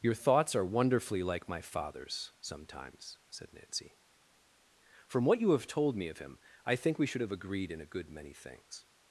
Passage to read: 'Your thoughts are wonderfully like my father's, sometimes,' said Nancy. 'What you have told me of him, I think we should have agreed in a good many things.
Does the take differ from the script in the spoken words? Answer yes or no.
yes